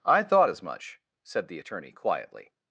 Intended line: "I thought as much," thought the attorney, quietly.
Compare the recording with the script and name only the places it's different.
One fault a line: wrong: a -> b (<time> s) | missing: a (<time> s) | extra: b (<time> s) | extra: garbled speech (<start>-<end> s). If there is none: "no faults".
wrong: thought -> said (1.2 s)